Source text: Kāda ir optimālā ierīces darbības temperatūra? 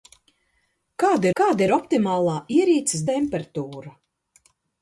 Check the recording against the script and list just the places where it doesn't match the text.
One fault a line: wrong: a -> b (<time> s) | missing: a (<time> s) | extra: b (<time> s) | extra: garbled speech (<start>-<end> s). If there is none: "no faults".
extra: kāda (1.4 s)
missing: darbības (3.1 s)